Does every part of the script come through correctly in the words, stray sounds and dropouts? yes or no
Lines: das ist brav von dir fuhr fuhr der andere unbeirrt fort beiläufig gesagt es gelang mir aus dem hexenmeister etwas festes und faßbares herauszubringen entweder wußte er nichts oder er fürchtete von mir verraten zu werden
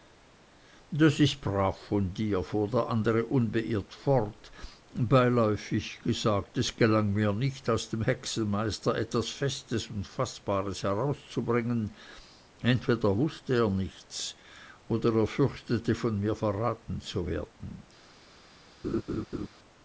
no